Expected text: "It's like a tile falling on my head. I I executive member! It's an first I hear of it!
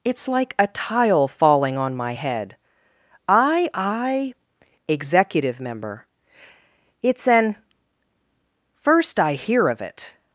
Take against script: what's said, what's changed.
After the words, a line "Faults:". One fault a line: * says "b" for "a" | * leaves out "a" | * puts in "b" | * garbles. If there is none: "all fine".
"It's like a tile falling on my head. I I executive member! It's an first I hear of it!
Faults:
all fine